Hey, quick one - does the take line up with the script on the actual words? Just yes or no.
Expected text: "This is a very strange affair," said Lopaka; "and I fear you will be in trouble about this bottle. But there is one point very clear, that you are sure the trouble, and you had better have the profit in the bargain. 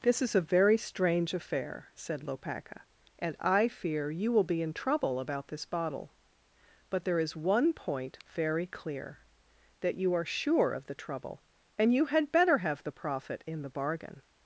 no